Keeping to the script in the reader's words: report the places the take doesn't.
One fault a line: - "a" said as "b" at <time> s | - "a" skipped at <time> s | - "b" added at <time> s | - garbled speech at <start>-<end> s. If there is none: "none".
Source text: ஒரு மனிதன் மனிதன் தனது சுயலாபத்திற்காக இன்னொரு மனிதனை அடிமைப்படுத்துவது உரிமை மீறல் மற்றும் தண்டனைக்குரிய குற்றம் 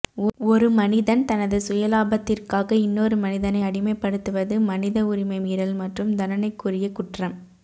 - "மனிதன்" skipped at 1.2 s
- "மனித" added at 4.7 s